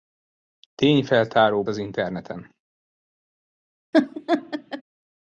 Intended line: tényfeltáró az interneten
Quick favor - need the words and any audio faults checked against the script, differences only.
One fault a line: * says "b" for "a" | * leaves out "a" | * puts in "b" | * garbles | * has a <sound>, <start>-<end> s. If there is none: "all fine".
* has a laugh, 3.9-4.8 s